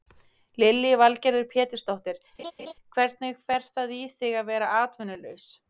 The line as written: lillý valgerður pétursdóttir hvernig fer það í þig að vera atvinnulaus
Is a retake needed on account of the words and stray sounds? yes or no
yes